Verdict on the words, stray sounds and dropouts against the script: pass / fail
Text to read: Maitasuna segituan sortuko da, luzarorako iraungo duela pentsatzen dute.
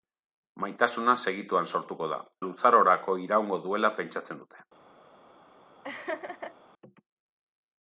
fail